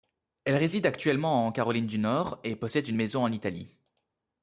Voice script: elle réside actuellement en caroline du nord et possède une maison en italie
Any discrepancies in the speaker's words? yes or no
no